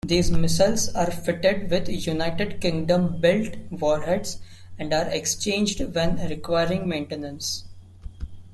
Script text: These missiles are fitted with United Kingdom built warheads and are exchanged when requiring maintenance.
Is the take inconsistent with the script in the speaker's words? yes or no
no